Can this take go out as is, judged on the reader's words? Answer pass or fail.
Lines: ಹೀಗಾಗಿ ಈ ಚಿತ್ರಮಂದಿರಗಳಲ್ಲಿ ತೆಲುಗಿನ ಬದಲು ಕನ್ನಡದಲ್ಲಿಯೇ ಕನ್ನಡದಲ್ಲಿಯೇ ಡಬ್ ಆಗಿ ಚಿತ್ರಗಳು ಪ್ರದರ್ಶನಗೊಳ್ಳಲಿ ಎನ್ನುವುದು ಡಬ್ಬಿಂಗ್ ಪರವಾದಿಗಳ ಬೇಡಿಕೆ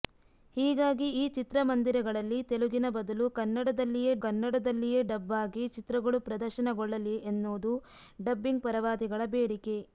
pass